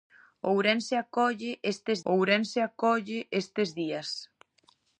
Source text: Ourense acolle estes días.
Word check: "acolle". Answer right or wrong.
right